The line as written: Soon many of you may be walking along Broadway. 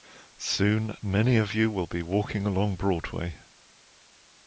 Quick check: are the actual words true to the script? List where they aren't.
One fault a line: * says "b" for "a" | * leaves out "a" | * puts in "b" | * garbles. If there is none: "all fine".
* says "will" for "may"